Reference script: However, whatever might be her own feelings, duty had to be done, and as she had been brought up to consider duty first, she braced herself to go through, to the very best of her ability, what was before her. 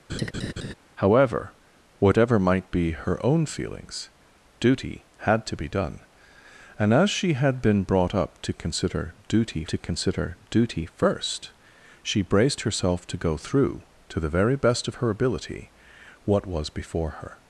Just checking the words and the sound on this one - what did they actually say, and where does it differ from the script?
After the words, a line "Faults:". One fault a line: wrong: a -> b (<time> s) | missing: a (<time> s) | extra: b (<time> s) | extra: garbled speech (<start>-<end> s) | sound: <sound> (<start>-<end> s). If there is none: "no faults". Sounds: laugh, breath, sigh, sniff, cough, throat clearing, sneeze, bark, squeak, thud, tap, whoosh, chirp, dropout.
However, whatever might be her own feelings, duty had to be done, and as she had been brought up to consider duty to consider duty first, she braced herself to go through, to the very best of her ability, what was before her.
Faults:
sound: laugh (0.1-0.7 s)
extra: to consider duty (9.7 s)